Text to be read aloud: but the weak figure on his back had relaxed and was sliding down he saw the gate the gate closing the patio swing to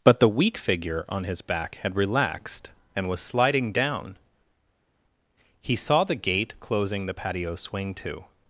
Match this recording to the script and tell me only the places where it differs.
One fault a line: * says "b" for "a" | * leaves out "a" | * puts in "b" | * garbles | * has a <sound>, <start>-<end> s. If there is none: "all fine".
* leaves out "the gate"